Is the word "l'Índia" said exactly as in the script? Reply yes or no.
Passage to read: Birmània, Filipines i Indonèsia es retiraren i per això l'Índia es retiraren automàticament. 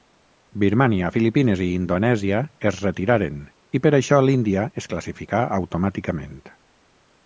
yes